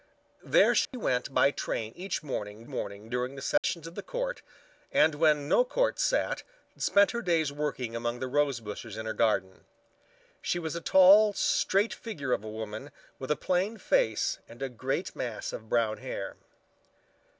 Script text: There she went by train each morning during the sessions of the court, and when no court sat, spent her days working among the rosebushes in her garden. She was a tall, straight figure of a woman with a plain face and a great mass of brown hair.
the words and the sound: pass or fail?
fail